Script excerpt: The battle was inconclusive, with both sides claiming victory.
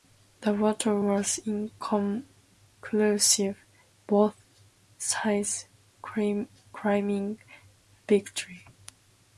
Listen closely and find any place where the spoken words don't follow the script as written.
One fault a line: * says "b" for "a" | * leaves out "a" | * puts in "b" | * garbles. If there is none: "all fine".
* leaves out "with"